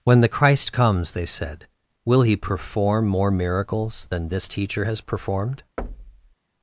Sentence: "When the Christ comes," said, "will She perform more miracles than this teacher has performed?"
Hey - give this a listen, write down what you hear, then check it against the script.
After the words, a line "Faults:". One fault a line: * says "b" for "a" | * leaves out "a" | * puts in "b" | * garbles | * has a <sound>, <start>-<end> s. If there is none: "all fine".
"When the Christ comes," they said, "will He perform more miracles than this teacher has performed?"
Faults:
* puts in "they"
* says "He" for "She"
* has a thud, 5.8-6.3 s